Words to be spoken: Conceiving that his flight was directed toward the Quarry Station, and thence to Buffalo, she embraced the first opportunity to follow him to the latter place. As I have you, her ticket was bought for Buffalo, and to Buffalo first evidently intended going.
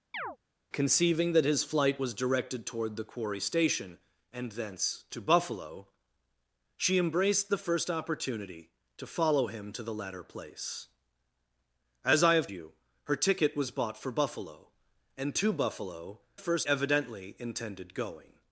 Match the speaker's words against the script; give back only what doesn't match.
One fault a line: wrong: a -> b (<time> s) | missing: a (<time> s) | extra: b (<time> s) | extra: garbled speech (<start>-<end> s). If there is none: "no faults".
no faults